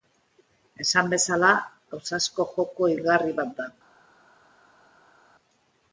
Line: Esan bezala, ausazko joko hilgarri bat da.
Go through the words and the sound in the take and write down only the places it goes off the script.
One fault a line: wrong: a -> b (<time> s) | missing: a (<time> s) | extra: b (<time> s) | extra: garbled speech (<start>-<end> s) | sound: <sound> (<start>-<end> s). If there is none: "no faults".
no faults